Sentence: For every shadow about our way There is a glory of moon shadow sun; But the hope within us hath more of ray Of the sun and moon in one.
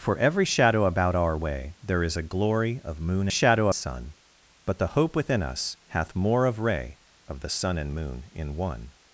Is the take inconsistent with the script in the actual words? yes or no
no